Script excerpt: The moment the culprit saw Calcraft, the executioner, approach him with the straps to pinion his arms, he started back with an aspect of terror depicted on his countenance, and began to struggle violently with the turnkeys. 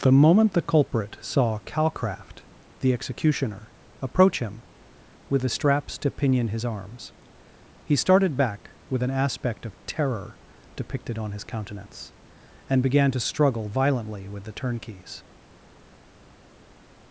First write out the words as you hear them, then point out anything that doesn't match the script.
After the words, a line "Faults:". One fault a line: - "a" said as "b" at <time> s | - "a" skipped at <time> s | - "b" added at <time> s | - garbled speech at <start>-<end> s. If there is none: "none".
The moment the culprit saw Calcraft, the executioner, approach him with the straps to pinion his arms, he started back with an aspect of terror depicted on his countenance, and began to struggle violently with the turnkeys.
Faults:
none